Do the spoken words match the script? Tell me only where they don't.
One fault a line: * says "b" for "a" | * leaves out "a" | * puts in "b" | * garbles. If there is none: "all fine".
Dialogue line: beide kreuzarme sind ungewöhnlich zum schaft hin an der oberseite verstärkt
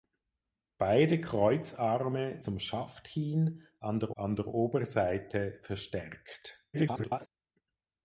* leaves out "sind ungewöhnlich"
* puts in "an der"
* garbles